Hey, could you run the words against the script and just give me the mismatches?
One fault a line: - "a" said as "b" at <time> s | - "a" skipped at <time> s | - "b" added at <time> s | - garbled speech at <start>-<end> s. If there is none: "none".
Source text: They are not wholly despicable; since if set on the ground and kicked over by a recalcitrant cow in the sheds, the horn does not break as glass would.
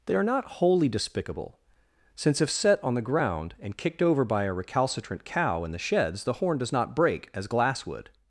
none